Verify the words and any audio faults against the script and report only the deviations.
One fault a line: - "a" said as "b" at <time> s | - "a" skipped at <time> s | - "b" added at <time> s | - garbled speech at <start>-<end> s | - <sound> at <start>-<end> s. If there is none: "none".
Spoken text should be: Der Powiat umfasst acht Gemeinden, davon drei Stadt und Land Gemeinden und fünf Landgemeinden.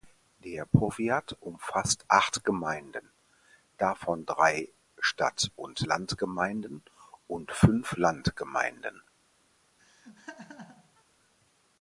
- laugh at 9.8-11.0 s